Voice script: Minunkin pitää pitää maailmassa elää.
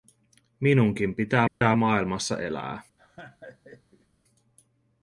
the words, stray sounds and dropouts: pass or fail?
fail